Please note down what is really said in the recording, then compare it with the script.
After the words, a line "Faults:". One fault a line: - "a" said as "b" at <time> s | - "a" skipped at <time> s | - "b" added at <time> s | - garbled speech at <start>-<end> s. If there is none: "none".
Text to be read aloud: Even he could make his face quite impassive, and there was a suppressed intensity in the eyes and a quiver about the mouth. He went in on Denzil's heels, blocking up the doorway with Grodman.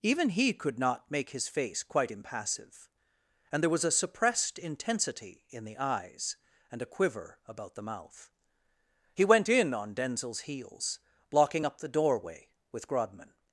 Even he could not make his face quite impassive, and there was a suppressed intensity in the eyes and a quiver about the mouth. He went in on Denzil's heels, blocking up the doorway with Grodman.
Faults:
- "not" added at 0.8 s